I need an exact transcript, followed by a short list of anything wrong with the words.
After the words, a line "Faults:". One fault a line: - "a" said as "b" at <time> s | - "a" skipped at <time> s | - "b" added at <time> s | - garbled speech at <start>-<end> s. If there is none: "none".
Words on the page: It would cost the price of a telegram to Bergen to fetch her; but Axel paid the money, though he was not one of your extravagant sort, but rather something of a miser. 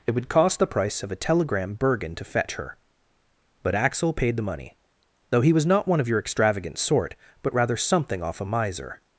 It would cost the price of a telegram Bergen to fetch her; but Axel paid the money, though he was not one of your extravagant sort, but rather something off a miser.
Faults:
- "to" skipped at 1.7 s
- "of" said as "off" at 8.2 s